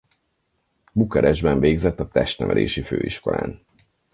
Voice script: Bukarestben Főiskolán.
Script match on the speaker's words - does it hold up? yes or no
no